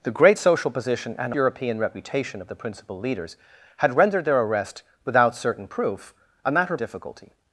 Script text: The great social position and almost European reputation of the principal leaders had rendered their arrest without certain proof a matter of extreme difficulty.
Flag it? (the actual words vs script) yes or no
yes